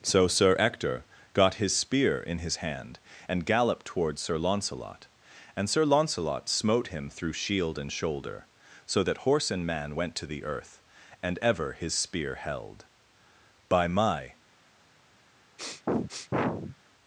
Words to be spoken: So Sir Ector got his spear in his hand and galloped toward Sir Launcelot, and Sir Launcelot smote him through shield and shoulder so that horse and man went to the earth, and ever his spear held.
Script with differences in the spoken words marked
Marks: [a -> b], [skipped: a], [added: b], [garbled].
So Sir Ector got his spear in his hand and galloped toward Sir Launcelot, and Sir Launcelot smote him through shield and shoulder so that horse and man went to the earth, and ever his spear held. [added: By my]